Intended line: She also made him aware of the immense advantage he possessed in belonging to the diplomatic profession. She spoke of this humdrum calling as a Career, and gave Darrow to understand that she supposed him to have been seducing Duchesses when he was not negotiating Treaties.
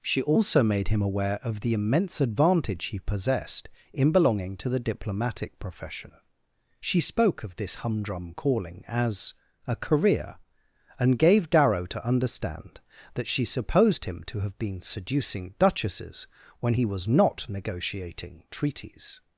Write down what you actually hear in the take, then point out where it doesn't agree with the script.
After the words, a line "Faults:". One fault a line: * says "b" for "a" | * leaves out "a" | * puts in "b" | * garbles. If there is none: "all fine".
She also made him aware of the immense advantage he possessed in belonging to the diplomatic profession. She spoke of this humdrum calling as a Career, and gave Darrow to understand that she supposed him to have been seducing Duchesses when he was not negotiating Treaties.
Faults:
all fine